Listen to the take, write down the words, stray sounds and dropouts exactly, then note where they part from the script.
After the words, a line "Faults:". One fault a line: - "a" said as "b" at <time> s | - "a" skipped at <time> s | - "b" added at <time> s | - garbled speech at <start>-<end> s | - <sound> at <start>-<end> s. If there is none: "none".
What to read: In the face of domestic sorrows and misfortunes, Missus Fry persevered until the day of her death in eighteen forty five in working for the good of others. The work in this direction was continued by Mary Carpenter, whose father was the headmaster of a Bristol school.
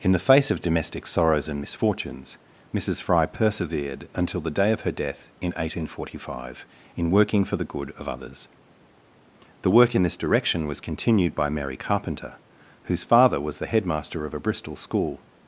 In the face of domestic sorrows and misfortunes, Missus Fry persevered until the day of her death in eighteen forty five in working for the good of others. The work in this direction was continued by Mary Carpenter, whose father was the headmaster of a Bristol school.
Faults:
none